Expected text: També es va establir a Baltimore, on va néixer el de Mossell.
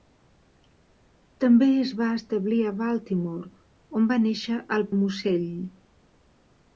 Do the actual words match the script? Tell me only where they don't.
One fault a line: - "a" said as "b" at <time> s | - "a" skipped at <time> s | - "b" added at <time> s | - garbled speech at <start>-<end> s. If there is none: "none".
none